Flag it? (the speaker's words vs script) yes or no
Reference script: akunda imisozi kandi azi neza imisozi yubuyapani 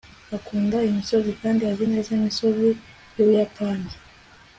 no